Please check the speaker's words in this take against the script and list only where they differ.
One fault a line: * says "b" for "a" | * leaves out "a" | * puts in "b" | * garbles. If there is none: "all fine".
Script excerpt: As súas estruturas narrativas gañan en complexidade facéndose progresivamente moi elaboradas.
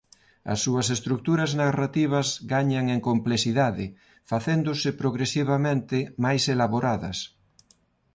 * says "máis" for "moi"